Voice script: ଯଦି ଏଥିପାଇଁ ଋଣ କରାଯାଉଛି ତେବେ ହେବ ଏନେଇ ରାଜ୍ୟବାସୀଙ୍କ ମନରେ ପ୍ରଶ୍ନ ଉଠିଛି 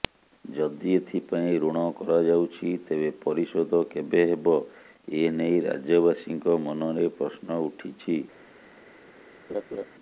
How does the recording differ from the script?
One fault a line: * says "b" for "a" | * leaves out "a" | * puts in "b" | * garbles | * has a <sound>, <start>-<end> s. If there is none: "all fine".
* puts in "ପରିଶୋଧ କେବେ"
* has a laugh, 9.5-9.9 s